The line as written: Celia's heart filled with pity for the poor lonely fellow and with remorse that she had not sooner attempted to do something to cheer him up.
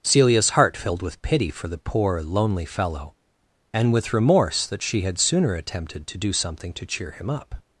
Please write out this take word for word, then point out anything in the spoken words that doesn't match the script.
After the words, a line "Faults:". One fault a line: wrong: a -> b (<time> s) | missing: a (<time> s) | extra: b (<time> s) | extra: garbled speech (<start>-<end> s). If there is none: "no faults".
Celia's heart filled with pity for the poor lonely fellow and with remorse that she had sooner attempted to do something to cheer him up.
Faults:
missing: not (5.2 s)